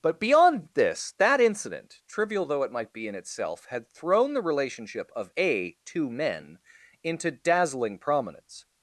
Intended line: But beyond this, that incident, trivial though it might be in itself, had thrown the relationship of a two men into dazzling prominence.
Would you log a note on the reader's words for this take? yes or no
no